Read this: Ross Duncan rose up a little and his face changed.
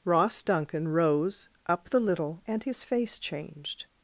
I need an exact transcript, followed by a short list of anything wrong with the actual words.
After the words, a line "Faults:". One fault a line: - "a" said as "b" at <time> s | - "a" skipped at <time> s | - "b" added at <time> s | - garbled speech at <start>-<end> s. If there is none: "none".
Ross Duncan rose up the little and his face changed.
Faults:
- "a" said as "the" at 1.9 s